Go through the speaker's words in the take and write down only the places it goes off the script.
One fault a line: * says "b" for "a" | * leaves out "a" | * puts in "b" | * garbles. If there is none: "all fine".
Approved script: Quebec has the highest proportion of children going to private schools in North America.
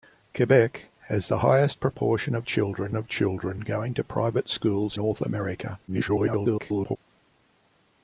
* puts in "of children"
* leaves out "in"
* garbles